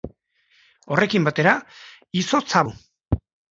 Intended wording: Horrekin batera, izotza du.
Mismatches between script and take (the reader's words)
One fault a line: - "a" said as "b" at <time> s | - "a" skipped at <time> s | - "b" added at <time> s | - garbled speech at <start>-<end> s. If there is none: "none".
none